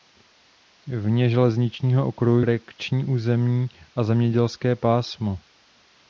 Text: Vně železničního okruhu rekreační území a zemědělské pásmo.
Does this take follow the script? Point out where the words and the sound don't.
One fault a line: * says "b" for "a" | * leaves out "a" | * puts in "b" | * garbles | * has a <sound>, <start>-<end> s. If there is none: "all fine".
all fine